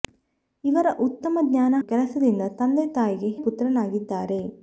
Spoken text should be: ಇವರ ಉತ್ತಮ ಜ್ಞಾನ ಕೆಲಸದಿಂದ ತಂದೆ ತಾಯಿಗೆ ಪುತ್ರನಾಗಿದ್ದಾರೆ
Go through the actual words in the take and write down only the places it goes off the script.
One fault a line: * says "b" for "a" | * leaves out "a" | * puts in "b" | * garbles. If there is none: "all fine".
all fine